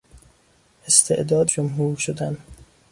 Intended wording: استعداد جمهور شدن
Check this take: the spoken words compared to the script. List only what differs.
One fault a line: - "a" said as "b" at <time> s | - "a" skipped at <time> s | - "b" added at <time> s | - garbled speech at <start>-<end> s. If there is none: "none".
none